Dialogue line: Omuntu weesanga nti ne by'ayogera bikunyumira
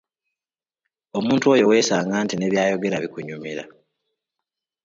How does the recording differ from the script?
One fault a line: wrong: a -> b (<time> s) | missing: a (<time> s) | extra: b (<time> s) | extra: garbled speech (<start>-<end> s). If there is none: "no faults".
extra: oyo (1.5 s)